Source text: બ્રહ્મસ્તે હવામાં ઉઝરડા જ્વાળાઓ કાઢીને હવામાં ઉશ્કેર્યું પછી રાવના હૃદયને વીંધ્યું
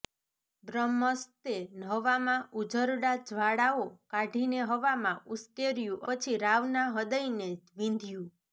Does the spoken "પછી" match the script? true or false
true